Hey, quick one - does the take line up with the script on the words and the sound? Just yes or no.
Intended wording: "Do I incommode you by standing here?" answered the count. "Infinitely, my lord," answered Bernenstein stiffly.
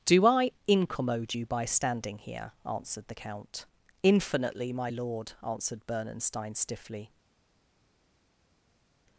yes